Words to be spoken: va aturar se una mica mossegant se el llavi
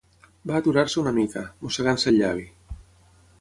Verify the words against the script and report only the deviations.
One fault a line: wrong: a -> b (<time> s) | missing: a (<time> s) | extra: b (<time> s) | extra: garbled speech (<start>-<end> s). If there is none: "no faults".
no faults